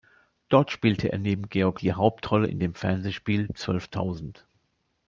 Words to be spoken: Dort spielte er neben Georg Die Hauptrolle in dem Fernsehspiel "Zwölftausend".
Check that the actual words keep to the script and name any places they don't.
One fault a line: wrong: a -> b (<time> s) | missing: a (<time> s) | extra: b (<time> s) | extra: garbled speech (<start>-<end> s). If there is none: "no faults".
no faults